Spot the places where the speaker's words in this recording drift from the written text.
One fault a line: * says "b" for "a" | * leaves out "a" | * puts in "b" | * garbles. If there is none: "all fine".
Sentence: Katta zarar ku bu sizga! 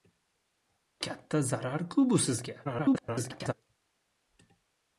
* garbles